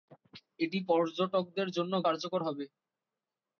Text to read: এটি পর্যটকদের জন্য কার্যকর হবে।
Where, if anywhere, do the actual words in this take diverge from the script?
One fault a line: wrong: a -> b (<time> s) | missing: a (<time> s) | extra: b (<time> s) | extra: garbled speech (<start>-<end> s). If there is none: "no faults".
no faults